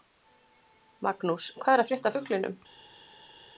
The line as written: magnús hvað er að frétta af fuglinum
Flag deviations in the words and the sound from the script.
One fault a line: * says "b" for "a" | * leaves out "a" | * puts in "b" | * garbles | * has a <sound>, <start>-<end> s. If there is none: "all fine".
all fine